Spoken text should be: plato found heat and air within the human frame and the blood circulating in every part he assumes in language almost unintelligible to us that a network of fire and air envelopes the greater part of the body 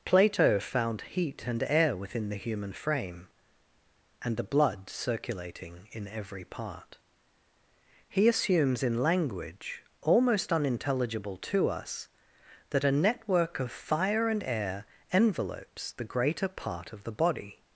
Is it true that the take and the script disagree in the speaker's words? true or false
false